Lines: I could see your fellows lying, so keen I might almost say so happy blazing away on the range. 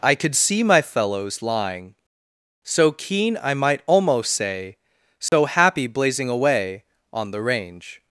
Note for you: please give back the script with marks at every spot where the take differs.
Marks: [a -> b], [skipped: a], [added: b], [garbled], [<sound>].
I could see [your -> my] fellows lying, so keen I might almost say so [dropout] happy blazing away on the range.